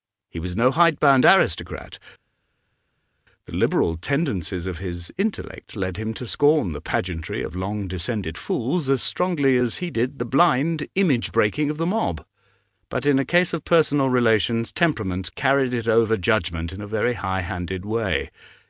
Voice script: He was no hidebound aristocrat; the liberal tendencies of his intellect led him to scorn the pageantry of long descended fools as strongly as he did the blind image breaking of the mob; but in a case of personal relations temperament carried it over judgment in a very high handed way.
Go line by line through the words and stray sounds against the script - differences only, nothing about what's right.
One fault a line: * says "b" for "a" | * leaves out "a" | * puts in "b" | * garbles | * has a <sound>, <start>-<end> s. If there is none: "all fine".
all fine